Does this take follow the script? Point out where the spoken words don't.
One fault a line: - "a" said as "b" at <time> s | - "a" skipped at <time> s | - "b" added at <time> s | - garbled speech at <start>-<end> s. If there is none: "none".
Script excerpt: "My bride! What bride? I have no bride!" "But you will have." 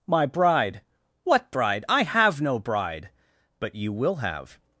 none